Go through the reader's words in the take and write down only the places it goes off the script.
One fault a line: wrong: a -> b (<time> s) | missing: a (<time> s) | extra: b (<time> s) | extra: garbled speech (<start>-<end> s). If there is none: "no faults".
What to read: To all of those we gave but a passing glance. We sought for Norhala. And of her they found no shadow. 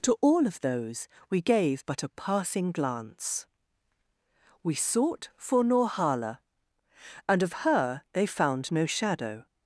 no faults